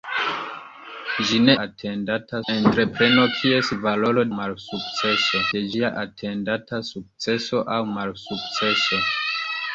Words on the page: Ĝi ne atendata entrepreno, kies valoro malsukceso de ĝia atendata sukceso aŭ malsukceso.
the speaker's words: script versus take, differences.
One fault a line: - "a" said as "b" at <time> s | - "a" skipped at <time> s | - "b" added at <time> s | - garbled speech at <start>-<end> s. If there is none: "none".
none